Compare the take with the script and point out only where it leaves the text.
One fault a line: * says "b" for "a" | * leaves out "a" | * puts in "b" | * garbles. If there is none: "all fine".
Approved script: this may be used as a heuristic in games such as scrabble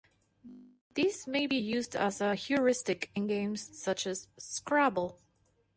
all fine